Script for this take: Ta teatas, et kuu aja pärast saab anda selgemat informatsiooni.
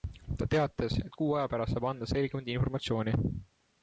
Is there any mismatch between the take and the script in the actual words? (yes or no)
no